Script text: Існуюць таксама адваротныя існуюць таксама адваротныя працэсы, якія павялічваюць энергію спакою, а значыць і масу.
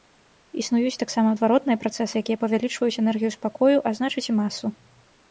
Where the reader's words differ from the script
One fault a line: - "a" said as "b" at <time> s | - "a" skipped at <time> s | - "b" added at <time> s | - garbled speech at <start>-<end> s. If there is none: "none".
- "існуюць таксама адваротныя" skipped at 1.8 s